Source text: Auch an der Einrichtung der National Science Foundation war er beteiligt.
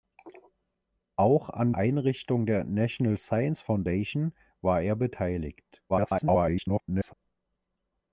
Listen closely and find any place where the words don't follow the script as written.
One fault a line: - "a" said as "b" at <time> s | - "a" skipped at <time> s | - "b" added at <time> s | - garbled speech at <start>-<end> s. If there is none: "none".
- "der" skipped at 1.7 s
- garbled speech at 5.9-7.1 s